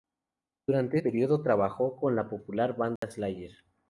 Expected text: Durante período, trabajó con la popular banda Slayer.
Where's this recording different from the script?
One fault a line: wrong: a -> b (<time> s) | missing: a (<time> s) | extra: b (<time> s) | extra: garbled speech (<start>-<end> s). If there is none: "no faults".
no faults